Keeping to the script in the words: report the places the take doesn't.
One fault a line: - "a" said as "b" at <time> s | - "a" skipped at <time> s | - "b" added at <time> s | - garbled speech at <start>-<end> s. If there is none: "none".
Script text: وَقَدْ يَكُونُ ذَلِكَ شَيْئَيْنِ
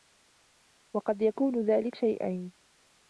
none